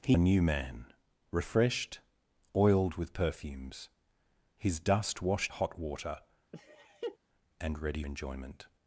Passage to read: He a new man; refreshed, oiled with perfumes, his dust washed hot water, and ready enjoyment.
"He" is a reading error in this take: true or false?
false